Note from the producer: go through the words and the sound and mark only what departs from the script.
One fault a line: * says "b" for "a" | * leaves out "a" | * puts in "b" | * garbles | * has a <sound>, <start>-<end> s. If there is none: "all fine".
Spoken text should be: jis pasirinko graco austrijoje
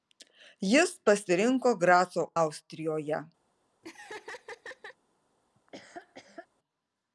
* has a laugh, 3.8-5.0 s
* has a laugh, 5.6-6.5 s